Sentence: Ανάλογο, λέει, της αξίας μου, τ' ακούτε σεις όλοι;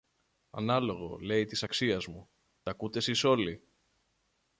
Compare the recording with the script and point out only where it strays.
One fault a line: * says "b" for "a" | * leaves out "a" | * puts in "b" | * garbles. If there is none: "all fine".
all fine